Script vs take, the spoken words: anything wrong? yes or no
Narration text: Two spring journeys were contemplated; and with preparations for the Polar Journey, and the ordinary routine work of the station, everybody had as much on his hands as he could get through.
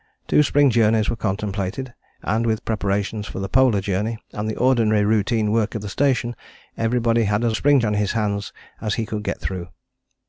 yes